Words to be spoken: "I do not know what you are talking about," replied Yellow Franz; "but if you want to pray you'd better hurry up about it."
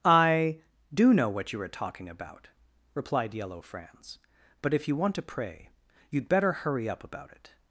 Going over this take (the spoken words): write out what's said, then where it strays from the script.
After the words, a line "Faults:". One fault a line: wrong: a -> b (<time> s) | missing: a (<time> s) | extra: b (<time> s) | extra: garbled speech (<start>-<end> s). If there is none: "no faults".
"I do know what you are talking about," replied Yellow Franz; "but if you want to pray you'd better hurry up about it."
Faults:
missing: not (1.1 s)